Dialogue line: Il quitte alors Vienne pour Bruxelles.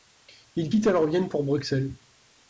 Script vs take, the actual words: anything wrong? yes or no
no